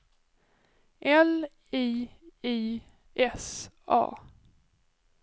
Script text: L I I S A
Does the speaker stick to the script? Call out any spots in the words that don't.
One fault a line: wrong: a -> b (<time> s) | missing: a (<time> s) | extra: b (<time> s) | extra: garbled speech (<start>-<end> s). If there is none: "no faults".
no faults